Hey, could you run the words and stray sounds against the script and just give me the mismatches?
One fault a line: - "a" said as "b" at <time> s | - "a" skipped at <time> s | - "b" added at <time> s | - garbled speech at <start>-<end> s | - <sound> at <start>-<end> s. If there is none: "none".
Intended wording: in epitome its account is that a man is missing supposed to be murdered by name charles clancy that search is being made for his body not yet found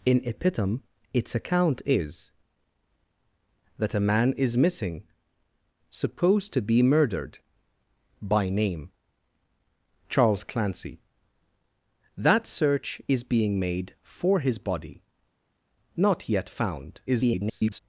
- garbled speech at 17.1-17.8 s